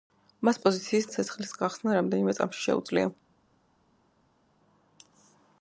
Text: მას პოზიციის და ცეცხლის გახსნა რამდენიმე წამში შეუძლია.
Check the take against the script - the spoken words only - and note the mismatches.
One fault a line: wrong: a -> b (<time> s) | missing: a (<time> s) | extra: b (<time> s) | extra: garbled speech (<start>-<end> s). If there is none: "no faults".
no faults